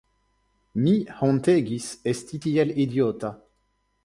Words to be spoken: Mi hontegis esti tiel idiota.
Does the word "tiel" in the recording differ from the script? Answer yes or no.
no